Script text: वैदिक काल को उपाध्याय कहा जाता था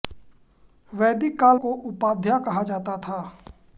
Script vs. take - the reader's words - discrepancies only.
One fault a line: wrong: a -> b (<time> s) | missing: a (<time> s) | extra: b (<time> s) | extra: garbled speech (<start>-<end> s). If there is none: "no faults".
no faults